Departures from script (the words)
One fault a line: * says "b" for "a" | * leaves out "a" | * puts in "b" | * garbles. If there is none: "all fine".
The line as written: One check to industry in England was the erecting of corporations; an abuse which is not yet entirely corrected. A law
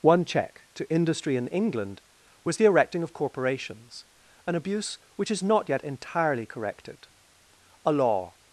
all fine